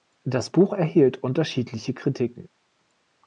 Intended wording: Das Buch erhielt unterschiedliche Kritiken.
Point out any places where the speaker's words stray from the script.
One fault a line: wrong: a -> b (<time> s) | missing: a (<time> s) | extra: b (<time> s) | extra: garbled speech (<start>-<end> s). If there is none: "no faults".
no faults